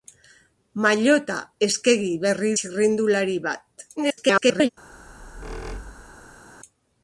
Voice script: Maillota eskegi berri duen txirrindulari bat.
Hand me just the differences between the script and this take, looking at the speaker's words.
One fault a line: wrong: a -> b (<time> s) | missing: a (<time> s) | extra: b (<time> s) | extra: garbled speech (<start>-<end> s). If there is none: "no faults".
missing: duen (2.5 s)
extra: garbled speech (4.0-4.7 s)